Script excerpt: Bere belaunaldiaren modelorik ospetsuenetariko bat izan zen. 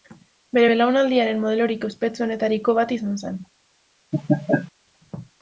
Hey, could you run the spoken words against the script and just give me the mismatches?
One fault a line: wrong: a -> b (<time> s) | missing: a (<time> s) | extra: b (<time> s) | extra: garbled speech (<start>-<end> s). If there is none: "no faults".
no faults